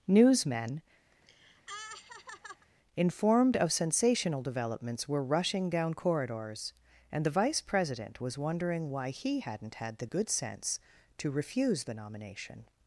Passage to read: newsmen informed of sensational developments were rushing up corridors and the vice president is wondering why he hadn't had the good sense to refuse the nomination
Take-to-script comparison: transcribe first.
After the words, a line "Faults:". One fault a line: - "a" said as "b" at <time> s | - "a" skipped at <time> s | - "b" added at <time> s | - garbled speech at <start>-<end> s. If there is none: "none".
newsmen informed of sensational developments were rushing down corridors and the vice president was wondering why he hadn't had the good sense to refuse the nomination
Faults:
- "up" said as "down" at 5.7 s
- "is" said as "was" at 8.2 s